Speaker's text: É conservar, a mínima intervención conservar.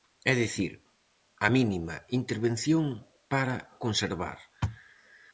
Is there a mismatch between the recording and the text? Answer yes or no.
yes